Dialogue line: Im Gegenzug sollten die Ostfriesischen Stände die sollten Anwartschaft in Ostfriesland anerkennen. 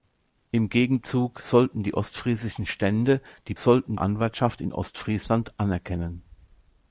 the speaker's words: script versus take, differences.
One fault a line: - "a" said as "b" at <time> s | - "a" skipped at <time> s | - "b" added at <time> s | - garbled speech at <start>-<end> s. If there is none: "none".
none